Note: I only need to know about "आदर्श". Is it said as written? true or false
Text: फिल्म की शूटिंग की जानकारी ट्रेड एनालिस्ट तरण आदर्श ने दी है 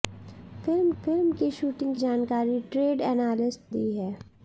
false